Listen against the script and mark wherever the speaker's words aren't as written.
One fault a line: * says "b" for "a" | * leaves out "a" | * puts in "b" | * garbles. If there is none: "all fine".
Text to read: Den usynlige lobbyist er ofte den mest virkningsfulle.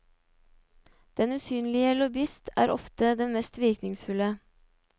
all fine